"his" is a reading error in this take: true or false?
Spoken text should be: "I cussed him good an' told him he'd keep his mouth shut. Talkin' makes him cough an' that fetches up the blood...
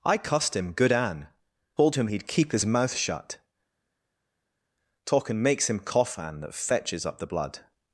false